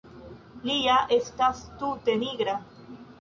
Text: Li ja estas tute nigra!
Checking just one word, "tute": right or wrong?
right